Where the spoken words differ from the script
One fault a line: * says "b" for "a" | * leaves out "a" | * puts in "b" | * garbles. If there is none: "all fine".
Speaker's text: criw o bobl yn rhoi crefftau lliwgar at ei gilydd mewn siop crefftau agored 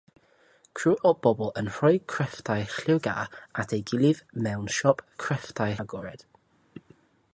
all fine